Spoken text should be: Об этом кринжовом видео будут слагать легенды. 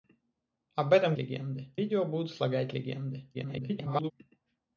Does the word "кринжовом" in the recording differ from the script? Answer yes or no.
yes